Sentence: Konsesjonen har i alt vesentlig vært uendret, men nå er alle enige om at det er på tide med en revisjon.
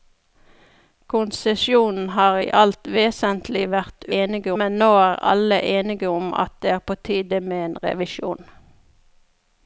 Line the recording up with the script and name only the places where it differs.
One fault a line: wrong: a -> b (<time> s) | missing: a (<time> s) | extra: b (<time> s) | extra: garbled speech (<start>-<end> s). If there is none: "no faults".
wrong: uendret -> enige (4.2 s)